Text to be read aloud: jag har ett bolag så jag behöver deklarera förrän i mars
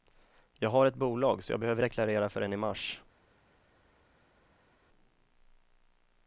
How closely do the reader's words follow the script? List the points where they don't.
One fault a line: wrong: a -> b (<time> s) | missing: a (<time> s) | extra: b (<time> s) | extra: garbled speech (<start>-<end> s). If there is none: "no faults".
no faults